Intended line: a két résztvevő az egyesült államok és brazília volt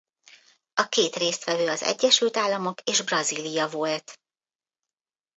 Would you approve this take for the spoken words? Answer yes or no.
yes